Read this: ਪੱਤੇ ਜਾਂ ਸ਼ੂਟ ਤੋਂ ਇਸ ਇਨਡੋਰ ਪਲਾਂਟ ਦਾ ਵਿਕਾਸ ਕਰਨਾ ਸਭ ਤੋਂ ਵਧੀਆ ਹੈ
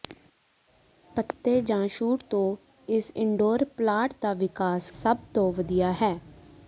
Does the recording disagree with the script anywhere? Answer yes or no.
yes